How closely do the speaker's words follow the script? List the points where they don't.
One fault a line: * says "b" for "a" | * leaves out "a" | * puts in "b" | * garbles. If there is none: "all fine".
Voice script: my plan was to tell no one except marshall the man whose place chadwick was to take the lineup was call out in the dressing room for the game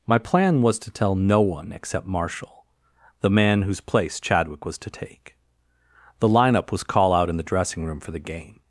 all fine